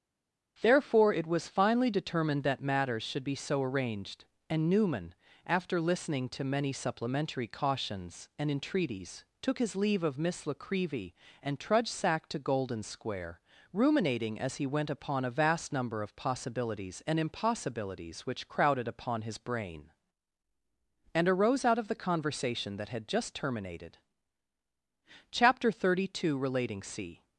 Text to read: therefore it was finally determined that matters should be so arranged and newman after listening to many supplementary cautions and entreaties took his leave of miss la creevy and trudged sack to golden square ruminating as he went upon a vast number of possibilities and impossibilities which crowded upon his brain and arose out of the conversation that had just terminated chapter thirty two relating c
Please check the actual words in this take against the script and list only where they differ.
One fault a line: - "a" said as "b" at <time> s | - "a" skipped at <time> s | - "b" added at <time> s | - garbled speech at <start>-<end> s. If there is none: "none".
none